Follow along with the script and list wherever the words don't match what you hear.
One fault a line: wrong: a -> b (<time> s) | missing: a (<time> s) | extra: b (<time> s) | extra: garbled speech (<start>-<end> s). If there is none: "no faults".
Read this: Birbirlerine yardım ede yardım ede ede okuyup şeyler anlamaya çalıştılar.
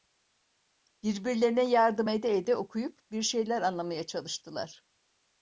missing: yardım (2.4 s)
wrong: ede okuyup -> okuyup bir (2.5 s)